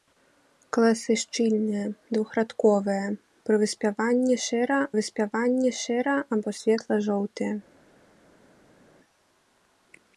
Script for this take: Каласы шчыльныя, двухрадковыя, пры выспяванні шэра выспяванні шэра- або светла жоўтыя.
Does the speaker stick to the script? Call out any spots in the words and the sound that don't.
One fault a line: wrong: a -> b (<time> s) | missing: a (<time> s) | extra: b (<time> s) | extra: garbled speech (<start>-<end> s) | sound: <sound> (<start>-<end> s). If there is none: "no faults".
no faults